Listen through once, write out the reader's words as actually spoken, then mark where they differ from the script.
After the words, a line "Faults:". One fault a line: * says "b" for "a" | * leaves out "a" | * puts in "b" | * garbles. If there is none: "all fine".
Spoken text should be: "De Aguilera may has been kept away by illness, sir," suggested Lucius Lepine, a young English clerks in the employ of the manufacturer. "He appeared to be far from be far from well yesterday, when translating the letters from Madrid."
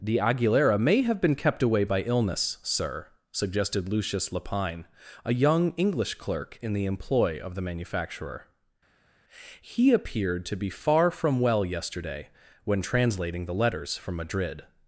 "De Aguilera may have been kept away by illness, sir," suggested Lucius Lepine, a young English clerk in the employ of the manufacturer. "He appeared to be far from well yesterday, when translating the letters from Madrid."
Faults:
* says "have" for "has"
* says "clerk" for "clerks"
* leaves out "be far from"